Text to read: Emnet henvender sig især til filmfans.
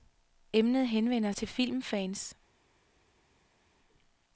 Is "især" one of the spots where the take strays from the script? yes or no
yes